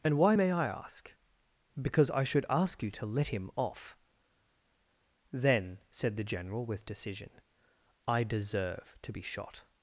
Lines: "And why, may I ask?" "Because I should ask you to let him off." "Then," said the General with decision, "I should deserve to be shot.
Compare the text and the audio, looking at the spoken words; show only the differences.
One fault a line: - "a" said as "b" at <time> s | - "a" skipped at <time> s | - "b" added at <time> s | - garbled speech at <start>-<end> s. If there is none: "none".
- "should" skipped at 8.2 s